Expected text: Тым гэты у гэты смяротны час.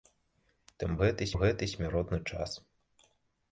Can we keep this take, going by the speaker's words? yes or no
yes